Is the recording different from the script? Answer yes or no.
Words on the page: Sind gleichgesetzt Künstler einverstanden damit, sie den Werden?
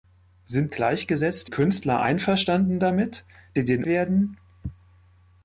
no